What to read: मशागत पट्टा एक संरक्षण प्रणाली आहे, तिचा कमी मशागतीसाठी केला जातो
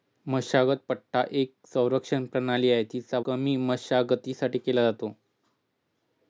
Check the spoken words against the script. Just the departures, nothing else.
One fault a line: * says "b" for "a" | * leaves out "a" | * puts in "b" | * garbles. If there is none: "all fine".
all fine